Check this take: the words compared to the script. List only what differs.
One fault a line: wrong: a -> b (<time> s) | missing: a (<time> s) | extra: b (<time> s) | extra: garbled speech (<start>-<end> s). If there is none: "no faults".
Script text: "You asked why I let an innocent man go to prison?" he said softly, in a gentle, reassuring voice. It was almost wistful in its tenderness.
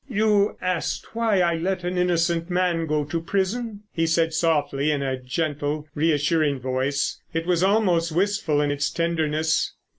no faults